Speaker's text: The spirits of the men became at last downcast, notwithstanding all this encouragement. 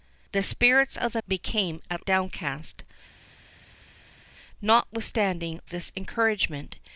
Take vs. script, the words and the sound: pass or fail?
fail